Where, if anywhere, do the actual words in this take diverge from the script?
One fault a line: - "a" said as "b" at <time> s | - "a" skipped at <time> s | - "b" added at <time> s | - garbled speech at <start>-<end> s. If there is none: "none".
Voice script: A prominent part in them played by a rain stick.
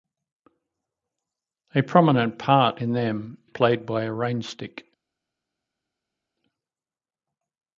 none